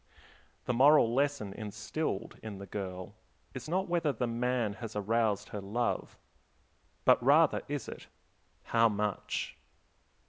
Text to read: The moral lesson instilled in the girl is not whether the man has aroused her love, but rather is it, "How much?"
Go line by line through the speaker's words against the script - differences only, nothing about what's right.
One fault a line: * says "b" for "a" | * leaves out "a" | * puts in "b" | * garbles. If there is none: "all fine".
all fine